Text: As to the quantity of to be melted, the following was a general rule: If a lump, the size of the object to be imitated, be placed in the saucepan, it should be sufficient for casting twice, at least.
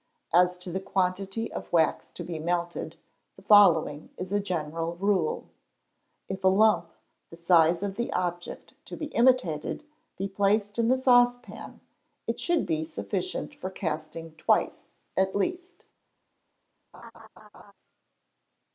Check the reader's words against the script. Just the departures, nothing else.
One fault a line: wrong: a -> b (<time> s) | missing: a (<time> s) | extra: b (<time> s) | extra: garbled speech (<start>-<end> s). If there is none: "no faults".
extra: wax (1.7 s)
wrong: was -> is (4.2 s)